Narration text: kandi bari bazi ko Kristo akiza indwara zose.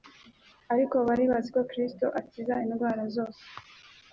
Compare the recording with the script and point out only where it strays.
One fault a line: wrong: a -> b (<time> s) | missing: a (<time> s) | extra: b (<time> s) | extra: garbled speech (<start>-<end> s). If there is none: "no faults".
wrong: kandi -> ariko (0.7 s)